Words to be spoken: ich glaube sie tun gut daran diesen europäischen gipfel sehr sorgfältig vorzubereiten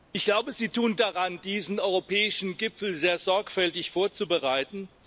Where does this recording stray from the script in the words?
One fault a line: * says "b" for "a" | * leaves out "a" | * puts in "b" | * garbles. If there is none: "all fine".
* leaves out "gut"